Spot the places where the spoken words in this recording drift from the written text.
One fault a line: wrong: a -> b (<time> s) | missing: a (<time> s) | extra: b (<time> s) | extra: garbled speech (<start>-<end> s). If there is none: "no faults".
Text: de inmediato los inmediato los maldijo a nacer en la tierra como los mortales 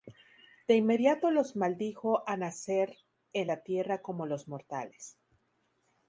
missing: inmediato los (1.6 s)